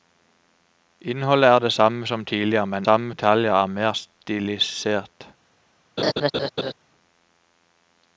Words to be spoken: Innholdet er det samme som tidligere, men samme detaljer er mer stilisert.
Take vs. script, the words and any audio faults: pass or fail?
fail